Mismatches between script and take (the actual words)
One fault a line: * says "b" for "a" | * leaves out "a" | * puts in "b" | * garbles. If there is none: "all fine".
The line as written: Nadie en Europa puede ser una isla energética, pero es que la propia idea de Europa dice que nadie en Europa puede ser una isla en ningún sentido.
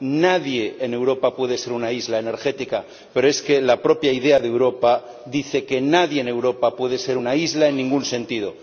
all fine